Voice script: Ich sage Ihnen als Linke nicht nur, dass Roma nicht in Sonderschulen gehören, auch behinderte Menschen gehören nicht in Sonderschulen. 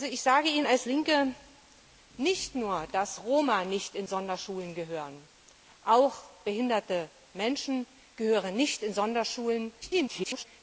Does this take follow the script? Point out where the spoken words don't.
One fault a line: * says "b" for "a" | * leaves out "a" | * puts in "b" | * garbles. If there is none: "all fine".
* garbles